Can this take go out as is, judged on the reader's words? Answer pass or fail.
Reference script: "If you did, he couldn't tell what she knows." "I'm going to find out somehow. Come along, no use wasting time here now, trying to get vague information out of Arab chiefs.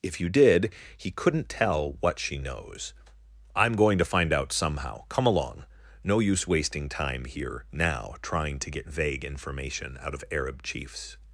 pass